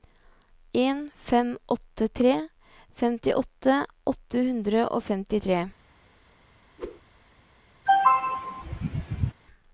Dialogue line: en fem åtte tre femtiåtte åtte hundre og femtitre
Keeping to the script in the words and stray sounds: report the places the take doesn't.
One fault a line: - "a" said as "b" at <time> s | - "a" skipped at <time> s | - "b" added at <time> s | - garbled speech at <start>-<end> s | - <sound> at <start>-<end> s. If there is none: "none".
- whoosh at 6.8-7.0 s
- throat clearing at 7.9-9.3 s